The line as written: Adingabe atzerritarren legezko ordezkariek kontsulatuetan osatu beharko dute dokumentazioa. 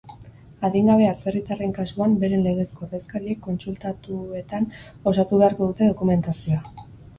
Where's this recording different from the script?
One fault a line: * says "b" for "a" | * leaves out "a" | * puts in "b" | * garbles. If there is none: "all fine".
* puts in "kasuan beren"